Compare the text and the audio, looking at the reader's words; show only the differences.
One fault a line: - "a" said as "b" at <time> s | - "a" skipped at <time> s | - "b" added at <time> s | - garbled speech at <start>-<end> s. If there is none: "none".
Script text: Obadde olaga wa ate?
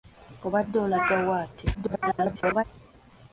- garbled speech at 1.7-2.6 s